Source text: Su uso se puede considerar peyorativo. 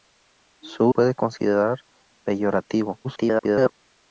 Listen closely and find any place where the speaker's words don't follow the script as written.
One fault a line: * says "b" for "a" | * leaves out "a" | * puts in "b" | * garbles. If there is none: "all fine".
* leaves out "uso se"
* garbles